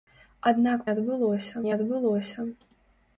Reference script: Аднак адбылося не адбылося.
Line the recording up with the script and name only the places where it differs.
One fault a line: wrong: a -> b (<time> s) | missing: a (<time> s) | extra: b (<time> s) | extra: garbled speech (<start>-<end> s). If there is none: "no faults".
no faults